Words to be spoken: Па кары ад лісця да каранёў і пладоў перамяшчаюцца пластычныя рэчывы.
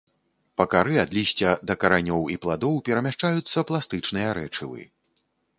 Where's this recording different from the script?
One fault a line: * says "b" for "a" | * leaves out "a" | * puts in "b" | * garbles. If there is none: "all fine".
all fine